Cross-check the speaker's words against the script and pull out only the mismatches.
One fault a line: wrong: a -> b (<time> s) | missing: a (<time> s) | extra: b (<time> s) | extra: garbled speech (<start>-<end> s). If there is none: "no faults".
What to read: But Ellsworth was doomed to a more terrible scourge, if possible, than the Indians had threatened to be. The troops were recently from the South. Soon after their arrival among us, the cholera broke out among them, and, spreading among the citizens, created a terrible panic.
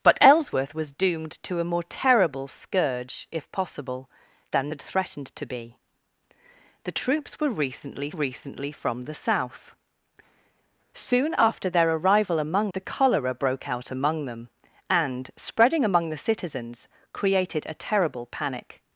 missing: the Indians (4.7 s)
extra: recently (8.1 s)
missing: us (12.7 s)